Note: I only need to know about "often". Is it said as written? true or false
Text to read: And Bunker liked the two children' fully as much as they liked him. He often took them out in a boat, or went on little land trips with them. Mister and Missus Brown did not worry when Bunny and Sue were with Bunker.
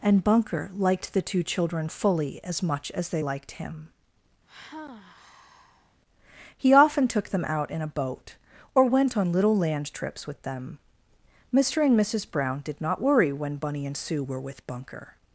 true